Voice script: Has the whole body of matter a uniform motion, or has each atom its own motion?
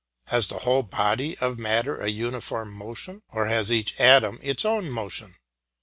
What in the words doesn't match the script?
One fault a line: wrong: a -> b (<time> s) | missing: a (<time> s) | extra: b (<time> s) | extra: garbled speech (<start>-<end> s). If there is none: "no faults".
no faults